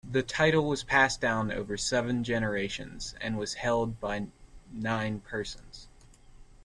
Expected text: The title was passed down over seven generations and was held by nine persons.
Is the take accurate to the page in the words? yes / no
yes